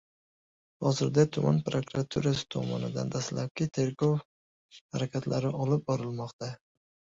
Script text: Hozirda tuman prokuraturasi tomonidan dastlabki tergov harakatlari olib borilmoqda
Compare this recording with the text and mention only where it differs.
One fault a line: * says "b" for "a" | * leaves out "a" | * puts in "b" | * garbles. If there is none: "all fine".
all fine